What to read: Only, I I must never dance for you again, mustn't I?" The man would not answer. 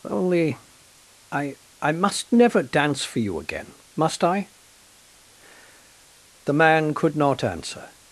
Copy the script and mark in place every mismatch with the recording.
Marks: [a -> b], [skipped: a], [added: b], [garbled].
Only, I I must never dance for you again, [mustn't -> must] I?" The man [would -> could] not answer.